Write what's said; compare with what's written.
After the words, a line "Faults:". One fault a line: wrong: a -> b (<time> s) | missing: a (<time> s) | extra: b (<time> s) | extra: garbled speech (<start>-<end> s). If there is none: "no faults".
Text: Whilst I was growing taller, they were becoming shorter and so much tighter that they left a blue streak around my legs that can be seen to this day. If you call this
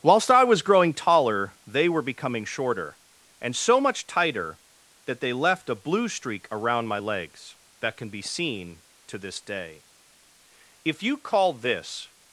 Whilst I was growing taller, they were becoming shorter and so much tighter that they left a blue streak around my legs that can be seen to this day. If you call this
Faults:
no faults